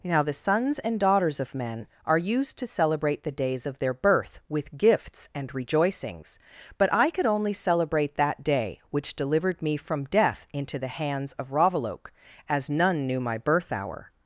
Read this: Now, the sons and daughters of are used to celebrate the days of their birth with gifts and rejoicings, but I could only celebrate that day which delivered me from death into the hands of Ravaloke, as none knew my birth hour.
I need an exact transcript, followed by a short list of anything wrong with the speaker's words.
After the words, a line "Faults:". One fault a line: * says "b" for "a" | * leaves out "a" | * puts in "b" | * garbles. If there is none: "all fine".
Now, the sons and daughters of men are used to celebrate the days of their birth with gifts and rejoicings, but I could only celebrate that day which delivered me from death into the hands of Ravaloke, as none knew my birth hour.
Faults:
* puts in "men"